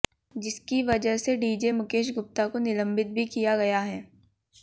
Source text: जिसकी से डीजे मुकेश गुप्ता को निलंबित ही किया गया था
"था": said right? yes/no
no